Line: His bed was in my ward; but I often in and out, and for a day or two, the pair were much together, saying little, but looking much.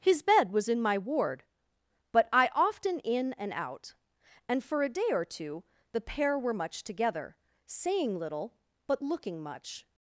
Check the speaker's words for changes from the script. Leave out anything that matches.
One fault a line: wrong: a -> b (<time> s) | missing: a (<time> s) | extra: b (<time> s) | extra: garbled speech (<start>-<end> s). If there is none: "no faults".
no faults